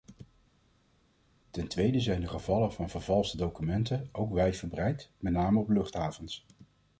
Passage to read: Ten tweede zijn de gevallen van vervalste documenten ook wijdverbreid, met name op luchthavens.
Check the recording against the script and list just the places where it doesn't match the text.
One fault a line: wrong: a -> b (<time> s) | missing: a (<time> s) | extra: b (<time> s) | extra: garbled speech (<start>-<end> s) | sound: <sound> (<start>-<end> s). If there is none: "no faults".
no faults